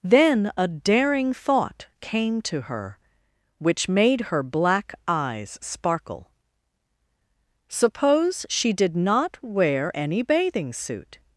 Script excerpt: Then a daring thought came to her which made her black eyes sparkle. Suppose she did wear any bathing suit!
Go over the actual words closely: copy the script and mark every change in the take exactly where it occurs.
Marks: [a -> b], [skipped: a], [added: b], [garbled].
Then a daring thought came to her which made her black eyes sparkle. Suppose she did [added: not] wear any bathing suit!